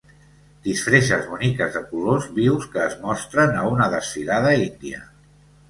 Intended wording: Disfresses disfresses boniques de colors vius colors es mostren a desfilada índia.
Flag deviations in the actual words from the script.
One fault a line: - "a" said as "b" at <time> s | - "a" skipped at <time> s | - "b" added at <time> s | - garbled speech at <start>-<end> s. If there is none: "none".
- "disfresses" skipped at 1.3 s
- "colors" said as "que" at 2.7 s
- "una" added at 3.8 s